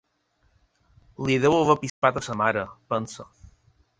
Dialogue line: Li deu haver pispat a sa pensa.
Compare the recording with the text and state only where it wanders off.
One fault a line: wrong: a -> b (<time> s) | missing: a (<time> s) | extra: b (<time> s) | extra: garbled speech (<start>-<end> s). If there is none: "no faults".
extra: mare (2.4 s)